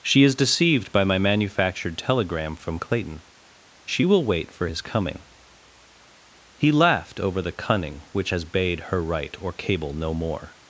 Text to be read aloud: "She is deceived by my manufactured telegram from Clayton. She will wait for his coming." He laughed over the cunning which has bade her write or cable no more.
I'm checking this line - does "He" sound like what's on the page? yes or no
yes